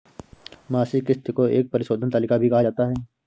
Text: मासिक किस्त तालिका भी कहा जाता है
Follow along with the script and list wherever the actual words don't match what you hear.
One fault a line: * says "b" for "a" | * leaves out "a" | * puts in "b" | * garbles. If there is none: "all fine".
* puts in "को एक परिशोधन"